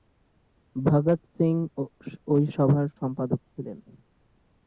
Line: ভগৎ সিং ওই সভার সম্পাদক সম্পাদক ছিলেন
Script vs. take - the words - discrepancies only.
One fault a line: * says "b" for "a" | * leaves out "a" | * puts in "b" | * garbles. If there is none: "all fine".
* leaves out "সম্পাদক"